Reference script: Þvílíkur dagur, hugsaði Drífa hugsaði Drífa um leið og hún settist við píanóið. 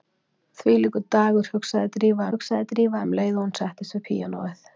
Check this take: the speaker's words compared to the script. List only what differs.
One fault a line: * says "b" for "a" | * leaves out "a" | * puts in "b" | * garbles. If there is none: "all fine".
all fine